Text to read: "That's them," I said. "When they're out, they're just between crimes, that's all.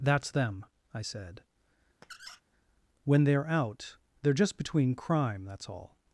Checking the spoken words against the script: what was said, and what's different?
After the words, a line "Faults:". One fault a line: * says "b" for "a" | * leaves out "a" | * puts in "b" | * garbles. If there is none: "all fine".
"That's them," I said. "When they're out, they're just between crime, that's all.
Faults:
* says "crime" for "crimes"